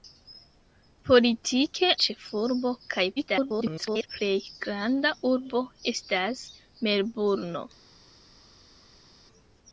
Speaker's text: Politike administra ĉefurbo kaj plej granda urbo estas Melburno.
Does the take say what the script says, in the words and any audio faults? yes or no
no